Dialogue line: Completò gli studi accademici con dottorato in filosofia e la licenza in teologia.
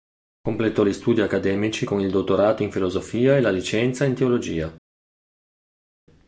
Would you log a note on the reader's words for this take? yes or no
yes